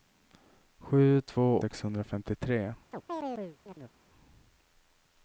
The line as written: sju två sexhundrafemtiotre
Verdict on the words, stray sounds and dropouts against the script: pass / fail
fail